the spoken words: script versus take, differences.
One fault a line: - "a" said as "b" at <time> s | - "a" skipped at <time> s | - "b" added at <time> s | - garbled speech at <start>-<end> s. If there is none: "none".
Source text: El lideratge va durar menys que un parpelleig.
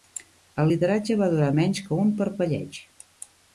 none